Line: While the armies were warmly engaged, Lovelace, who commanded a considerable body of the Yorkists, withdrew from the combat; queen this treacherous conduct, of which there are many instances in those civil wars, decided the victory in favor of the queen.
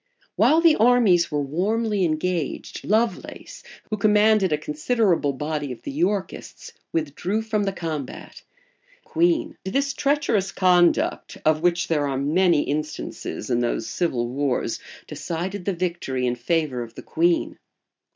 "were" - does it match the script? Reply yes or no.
yes